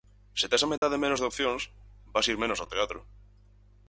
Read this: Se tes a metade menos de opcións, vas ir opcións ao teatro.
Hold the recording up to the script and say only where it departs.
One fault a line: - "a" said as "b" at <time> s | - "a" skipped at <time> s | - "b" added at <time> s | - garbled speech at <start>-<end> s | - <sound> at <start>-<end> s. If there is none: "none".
- dropout at 0.8-0.8 s
- "opcións" said as "menos" at 2.4 s